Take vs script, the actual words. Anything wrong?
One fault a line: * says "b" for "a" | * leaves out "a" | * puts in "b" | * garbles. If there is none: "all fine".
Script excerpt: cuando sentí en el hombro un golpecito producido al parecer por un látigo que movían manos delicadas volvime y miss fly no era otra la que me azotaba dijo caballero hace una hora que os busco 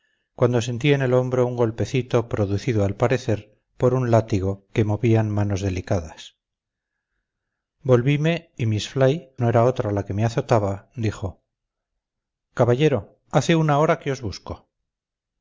all fine